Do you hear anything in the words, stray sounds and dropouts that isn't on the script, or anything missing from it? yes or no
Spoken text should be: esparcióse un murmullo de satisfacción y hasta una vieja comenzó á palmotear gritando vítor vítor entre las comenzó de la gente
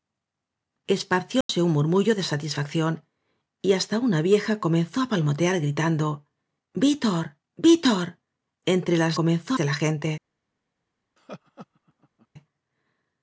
yes